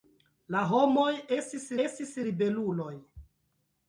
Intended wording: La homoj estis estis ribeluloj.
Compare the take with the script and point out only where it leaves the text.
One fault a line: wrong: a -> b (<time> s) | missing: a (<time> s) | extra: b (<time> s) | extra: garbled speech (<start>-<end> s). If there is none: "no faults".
no faults